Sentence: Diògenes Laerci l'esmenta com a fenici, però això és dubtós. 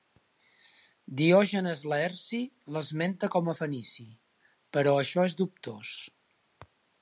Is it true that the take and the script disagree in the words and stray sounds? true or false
false